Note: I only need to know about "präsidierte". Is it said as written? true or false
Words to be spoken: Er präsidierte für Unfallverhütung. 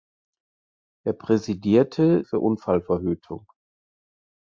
true